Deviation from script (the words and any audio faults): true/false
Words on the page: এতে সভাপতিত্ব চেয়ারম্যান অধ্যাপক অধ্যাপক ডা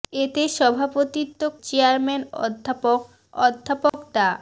true